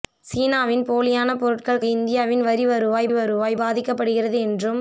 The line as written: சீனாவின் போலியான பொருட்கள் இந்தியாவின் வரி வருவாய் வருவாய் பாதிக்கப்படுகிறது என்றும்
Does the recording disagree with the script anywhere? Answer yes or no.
no